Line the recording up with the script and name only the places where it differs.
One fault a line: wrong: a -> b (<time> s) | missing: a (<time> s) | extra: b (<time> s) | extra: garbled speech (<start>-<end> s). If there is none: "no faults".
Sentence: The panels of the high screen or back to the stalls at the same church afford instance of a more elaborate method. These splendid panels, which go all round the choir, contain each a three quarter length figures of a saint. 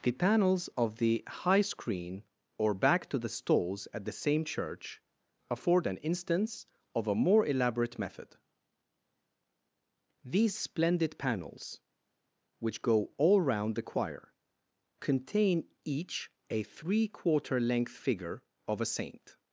extra: an (5.8 s)
wrong: figures -> figure (17.9 s)